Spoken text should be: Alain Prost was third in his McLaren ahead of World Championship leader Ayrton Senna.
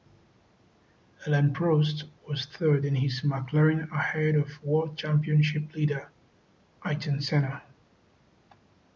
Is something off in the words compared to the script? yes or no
no